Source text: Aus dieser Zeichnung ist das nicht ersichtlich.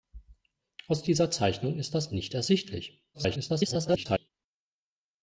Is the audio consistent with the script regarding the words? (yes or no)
no